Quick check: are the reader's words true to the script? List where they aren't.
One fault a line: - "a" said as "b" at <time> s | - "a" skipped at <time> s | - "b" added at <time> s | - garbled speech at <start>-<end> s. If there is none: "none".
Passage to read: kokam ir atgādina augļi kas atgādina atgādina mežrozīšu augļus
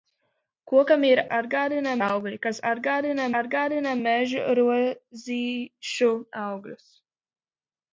none